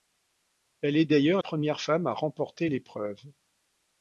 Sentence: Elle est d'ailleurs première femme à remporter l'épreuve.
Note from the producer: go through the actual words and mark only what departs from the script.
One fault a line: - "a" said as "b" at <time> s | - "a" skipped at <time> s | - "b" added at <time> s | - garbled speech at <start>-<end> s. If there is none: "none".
none